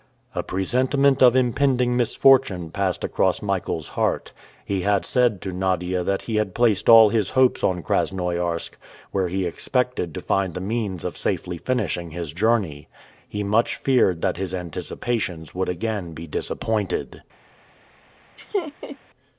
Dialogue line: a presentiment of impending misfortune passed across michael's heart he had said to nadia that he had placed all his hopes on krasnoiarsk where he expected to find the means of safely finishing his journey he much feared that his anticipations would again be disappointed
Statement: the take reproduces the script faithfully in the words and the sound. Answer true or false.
false